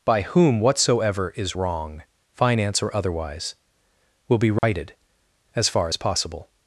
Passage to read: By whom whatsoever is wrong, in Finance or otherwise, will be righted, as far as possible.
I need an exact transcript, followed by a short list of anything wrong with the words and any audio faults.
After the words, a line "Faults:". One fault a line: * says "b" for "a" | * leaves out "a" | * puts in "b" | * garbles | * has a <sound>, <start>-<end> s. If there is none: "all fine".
By whom whatsoever is wrong, Finance or otherwise, will be righted, as far as possible.
Faults:
* leaves out "in"
* has a dropout, 4.6-4.6 s